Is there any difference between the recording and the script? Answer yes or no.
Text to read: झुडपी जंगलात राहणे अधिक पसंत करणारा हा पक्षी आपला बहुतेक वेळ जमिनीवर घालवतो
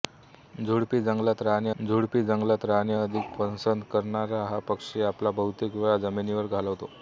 yes